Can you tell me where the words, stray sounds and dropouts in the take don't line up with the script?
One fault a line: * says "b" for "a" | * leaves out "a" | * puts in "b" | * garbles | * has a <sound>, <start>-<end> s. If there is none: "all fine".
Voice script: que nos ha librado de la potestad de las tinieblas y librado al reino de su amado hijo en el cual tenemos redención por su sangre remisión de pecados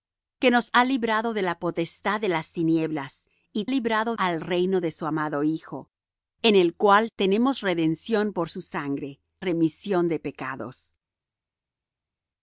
all fine